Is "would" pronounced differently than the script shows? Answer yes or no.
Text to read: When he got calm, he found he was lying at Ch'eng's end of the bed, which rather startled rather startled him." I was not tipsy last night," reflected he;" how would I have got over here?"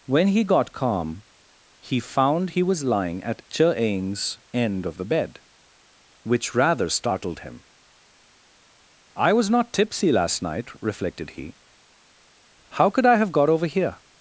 yes